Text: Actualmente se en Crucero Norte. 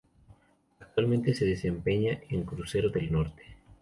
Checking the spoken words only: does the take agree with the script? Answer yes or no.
no